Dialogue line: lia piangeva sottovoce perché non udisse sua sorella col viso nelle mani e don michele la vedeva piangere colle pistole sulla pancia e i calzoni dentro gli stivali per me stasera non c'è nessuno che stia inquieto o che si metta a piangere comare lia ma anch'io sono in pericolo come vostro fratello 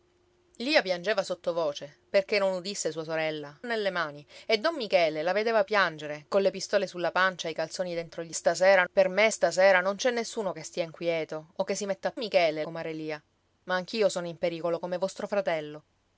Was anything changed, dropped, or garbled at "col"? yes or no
yes